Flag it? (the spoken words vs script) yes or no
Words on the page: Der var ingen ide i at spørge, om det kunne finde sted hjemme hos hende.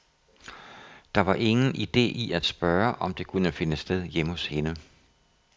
no